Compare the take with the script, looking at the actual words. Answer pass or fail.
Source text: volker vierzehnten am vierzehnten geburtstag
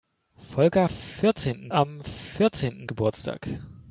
pass